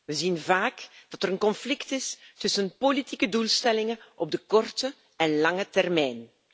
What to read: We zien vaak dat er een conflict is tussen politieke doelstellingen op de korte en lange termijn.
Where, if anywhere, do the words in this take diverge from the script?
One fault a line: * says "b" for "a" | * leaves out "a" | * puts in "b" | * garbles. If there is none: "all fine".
all fine